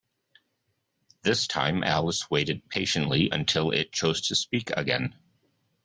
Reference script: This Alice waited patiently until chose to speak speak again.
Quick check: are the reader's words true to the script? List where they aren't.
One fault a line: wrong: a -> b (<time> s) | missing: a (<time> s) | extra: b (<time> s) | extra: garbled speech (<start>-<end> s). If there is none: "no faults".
extra: time (1.4 s)
extra: it (3.7 s)
missing: speak (4.7 s)